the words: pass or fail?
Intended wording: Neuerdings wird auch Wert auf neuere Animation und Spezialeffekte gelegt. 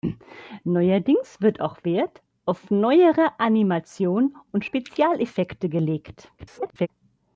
fail